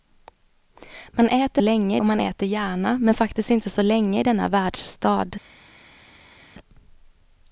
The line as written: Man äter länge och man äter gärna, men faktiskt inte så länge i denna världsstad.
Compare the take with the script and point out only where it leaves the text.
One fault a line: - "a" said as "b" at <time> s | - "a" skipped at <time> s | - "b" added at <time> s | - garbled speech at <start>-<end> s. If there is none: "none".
none